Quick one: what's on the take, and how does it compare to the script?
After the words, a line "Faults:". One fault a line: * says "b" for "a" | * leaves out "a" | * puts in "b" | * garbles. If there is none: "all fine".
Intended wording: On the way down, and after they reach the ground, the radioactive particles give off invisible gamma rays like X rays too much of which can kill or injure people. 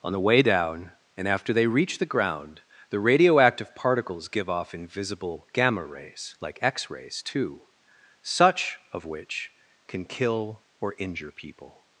On the way down, and after they reach the ground, the radioactive particles give off invisible gamma rays like X rays too such of which can kill or injure people.
Faults:
* says "such" for "much"